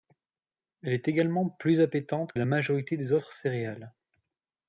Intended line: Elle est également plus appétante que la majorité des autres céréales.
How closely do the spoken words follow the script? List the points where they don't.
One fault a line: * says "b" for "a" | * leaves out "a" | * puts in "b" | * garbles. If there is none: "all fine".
* leaves out "que"